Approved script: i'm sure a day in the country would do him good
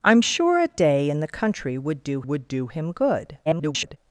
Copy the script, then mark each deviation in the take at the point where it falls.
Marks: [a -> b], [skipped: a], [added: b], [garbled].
i'm sure a day in the country would do [added: would do] him good [garbled]